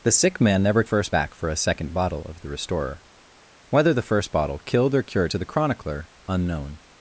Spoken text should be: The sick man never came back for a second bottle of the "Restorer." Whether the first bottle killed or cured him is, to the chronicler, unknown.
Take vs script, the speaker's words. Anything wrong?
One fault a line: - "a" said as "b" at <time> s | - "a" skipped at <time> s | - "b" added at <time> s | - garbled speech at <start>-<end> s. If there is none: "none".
- "came" said as "first" at 0.8 s
- "him is" skipped at 5.3 s